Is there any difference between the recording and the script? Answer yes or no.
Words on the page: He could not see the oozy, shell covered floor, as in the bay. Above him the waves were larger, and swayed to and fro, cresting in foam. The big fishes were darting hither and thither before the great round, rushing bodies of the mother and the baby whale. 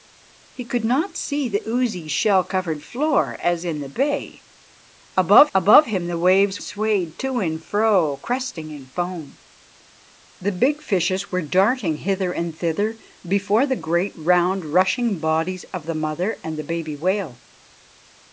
yes